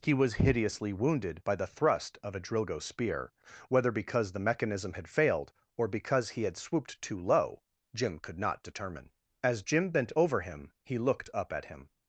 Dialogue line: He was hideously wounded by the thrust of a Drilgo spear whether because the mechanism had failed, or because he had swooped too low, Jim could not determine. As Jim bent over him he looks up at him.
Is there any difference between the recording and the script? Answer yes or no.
yes